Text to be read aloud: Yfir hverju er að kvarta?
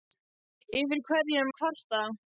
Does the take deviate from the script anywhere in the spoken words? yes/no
no